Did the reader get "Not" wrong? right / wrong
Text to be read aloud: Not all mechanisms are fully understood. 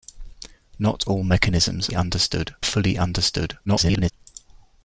right